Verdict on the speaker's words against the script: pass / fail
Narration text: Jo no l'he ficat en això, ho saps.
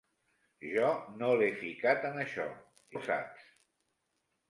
pass